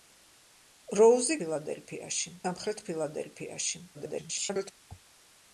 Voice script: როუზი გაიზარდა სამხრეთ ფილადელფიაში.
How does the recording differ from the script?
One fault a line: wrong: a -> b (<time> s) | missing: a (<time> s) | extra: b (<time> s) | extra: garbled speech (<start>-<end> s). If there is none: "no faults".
wrong: გაიზარდა -> ფილადელფიაში (1.4 s)
extra: garbled speech (3.9-4.7 s)